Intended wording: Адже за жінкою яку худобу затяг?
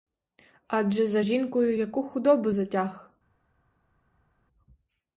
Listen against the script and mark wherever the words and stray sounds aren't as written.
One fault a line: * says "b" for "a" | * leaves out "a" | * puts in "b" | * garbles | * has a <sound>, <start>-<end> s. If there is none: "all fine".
all fine